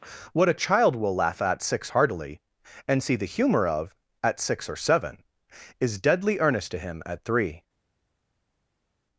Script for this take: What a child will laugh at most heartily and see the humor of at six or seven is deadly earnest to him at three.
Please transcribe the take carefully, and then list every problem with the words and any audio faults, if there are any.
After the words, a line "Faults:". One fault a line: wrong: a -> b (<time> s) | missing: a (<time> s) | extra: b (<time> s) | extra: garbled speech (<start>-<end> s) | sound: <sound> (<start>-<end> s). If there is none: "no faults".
What a child will laugh at six heartily and see the humor of at six or seven is deadly earnest to him at three.
Faults:
wrong: most -> six (1.6 s)